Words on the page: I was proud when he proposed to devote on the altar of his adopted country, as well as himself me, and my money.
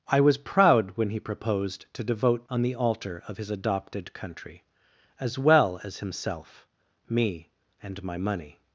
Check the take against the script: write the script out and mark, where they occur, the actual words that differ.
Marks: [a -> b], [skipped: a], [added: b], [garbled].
I was proud when he proposed to devote on the altar of his adopted country, as well as himself me, and my money.